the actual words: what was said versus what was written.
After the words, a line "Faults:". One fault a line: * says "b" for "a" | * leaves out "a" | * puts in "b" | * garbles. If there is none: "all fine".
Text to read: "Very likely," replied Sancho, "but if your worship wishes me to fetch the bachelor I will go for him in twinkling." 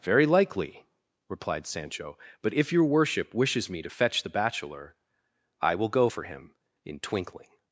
"Very likely," replied Sancho, "but if your worship wishes me to fetch the bachelor I will go for him in twinkling."
Faults:
all fine